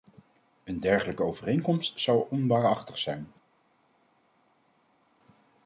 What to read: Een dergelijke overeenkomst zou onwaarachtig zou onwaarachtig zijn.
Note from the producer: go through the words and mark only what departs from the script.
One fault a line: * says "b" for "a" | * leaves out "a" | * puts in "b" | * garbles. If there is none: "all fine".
* leaves out "zou onwaarachtig"